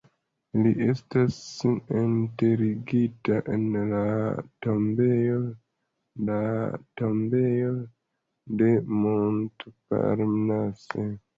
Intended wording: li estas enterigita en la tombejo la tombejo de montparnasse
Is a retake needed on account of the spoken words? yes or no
no